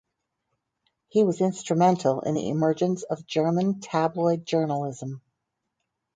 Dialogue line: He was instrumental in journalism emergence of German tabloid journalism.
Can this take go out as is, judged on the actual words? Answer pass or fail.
fail